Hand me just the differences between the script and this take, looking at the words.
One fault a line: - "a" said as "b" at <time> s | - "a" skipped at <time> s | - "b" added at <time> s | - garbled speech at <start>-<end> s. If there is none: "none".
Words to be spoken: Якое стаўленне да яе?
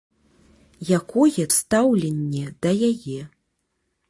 none